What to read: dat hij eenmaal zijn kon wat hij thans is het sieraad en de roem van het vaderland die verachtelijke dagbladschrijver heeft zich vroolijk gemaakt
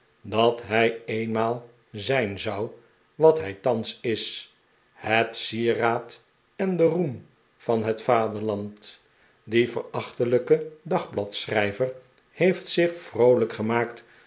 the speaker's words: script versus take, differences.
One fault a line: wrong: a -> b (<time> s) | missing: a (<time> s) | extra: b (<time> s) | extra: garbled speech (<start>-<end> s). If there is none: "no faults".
wrong: kon -> zou (2.4 s)